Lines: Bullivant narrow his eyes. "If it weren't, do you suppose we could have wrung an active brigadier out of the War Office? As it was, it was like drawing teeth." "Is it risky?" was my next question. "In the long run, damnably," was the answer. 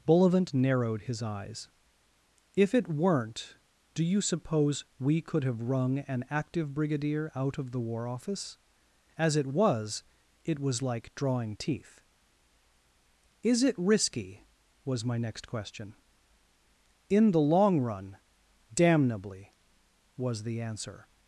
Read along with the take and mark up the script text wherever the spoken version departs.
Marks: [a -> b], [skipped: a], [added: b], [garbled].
Bullivant [narrow -> narrowed] his eyes. "If it weren't, do you suppose we could have wrung an active brigadier out of the War Office? As it was, it was like drawing teeth." "Is it risky?" was my next question. "In the long run, damnably," was the answer.